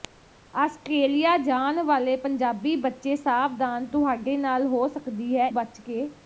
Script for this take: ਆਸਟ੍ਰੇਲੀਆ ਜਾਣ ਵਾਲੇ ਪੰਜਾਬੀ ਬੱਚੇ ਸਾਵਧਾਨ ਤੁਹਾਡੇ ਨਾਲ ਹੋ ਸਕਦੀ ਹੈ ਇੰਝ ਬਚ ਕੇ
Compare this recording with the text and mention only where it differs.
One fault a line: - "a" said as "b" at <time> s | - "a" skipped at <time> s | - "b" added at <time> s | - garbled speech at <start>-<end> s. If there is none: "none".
- "ਇੰਝ" skipped at 5.5 s